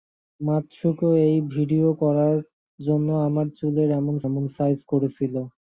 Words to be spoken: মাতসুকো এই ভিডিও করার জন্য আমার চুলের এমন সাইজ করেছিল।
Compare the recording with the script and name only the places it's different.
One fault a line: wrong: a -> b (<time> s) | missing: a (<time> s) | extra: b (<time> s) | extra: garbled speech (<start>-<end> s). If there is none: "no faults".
extra: এমন (4.3 s)